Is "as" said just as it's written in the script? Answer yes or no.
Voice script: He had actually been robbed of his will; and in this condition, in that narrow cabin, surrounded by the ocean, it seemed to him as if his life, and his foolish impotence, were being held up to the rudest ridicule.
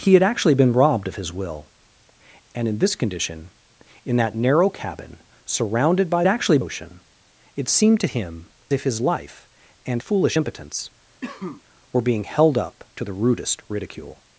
no